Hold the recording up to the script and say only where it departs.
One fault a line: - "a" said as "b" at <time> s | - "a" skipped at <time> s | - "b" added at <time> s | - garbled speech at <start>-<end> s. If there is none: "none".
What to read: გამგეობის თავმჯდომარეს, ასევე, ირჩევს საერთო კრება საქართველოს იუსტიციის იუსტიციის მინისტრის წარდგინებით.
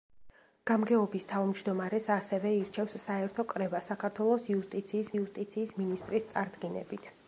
none